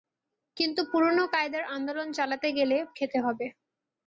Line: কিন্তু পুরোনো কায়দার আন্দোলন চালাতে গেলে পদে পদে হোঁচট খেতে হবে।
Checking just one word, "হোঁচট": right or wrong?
wrong